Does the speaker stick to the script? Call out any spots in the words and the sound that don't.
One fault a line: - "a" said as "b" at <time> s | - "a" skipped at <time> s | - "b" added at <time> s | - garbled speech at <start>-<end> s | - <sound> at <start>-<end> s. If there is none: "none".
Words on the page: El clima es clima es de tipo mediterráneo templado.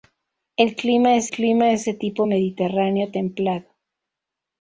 none